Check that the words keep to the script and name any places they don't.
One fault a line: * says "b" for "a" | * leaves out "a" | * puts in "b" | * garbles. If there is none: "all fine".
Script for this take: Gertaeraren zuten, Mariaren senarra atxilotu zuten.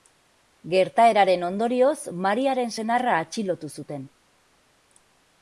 * says "ondorioz" for "zuten"